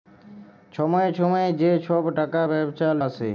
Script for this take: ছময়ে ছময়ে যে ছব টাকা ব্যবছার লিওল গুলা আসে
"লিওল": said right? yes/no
no